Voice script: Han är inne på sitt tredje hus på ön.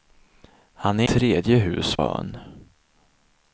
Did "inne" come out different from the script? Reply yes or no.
yes